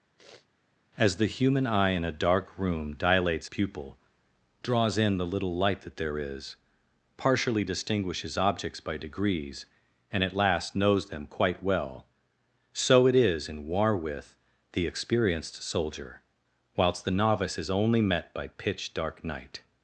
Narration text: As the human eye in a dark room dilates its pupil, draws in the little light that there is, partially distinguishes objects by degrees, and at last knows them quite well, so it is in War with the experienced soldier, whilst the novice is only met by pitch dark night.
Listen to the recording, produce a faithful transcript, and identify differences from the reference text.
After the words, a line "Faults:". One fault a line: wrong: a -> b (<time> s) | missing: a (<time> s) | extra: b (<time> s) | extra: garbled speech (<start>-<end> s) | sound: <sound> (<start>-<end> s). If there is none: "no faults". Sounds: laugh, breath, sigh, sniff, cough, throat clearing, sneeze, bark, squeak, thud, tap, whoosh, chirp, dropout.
As the human eye in a dark room dilates pupil, draws in the little light that there is, partially distinguishes objects by degrees, and at last knows them quite well, so it is in War with the experienced soldier, whilst the novice is only met by pitch dark night.
Faults:
sound: sniff (0.2-0.5 s)
missing: its (3.5 s)